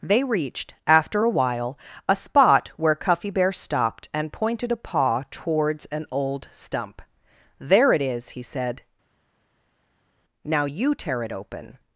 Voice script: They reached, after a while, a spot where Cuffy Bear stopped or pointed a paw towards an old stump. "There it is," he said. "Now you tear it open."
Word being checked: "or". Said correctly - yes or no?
no